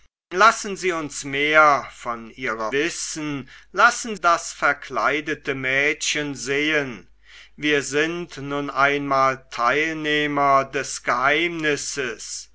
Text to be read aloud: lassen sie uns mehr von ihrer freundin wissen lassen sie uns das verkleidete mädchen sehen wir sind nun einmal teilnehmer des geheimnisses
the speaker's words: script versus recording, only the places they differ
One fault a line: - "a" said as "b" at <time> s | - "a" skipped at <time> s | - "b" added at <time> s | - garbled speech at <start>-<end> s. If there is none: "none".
- "freundin" skipped at 2.7 s
- "sie uns" skipped at 4.2 s